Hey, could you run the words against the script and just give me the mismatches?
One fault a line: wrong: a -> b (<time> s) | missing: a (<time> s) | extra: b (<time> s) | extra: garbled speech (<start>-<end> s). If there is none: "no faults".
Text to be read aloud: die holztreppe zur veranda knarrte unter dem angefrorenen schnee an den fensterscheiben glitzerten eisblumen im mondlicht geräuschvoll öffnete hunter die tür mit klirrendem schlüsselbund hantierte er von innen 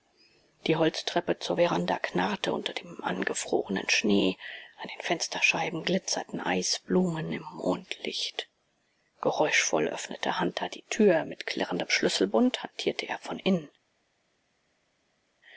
no faults